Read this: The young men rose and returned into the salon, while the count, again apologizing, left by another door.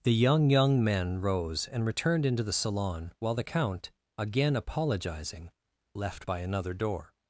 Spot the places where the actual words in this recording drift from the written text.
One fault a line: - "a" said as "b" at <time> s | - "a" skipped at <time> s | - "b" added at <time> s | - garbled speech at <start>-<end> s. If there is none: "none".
- "young" added at 0.5 s